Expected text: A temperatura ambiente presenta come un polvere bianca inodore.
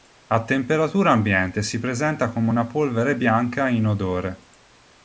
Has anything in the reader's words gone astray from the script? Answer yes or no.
yes